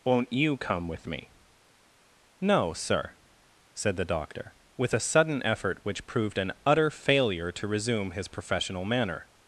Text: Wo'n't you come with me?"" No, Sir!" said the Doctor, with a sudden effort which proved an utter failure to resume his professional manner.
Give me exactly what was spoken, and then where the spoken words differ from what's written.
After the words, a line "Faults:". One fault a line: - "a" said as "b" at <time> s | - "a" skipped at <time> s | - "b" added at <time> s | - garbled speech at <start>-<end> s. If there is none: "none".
Wo'n't you come with me?"" No, Sir!" said the Doctor, with a sudden effort which proved an utter failure to resume his professional manner.
Faults:
none